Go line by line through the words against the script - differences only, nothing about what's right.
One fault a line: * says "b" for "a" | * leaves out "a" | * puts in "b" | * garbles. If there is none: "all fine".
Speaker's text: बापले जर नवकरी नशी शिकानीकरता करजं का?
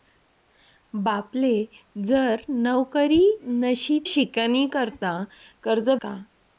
all fine